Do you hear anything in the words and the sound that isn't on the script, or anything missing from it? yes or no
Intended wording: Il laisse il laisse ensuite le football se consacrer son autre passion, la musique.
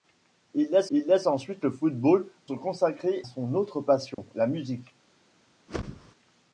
yes